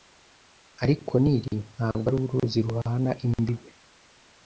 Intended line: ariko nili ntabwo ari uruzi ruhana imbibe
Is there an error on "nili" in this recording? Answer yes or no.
no